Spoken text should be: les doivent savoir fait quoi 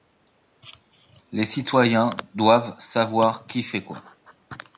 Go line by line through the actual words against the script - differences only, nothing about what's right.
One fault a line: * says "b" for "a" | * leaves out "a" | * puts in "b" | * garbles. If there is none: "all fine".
* puts in "citoyens"
* puts in "qui"